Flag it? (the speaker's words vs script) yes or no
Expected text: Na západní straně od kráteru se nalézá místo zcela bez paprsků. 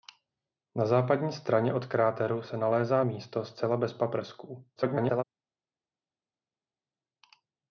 yes